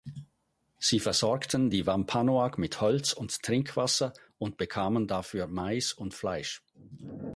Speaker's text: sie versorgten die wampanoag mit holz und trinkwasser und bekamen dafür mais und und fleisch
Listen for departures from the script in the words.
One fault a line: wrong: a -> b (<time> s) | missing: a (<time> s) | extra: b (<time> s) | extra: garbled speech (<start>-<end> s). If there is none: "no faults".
missing: und (6.1 s)